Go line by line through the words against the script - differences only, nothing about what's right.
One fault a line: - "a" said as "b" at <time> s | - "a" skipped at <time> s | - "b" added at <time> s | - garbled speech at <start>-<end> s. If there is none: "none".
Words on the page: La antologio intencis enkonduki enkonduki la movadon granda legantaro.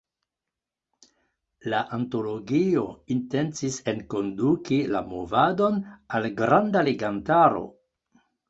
- "enkonduki" skipped at 4.8 s
- "al" added at 6.2 s